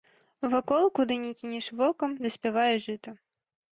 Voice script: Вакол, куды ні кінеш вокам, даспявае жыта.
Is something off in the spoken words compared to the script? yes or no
no